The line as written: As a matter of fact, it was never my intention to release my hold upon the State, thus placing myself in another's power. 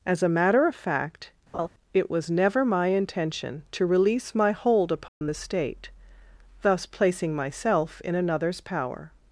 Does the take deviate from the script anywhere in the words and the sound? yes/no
yes